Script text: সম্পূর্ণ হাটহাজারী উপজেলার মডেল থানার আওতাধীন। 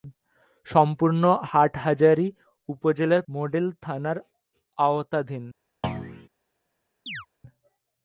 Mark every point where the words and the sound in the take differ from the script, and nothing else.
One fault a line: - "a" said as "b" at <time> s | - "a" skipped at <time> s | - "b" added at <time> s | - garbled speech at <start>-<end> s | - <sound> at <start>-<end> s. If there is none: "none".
- thud at 5.8-6.3 s
- chirp at 7.1-7.3 s